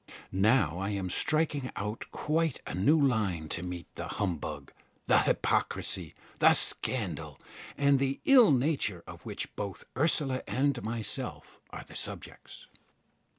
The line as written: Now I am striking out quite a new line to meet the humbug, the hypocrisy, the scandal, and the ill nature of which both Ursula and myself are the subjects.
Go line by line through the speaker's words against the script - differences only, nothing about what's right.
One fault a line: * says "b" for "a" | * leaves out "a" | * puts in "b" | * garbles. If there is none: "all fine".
all fine